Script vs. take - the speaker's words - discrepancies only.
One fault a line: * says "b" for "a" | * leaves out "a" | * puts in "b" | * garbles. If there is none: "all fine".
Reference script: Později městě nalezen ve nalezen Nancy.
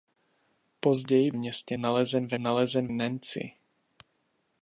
all fine